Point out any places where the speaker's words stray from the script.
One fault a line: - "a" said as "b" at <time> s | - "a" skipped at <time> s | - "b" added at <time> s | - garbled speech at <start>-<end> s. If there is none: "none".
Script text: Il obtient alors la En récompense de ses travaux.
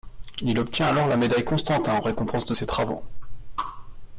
- "Médaille Constantin" added at 1.1 s